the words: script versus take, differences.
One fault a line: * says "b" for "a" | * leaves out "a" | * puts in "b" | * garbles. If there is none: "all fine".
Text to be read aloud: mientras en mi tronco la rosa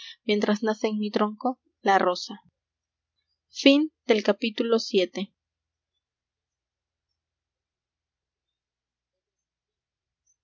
* puts in "nace"